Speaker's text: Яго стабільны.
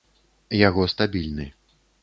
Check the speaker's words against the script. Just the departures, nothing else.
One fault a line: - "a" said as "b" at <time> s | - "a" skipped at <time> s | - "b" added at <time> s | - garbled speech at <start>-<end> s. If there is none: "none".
none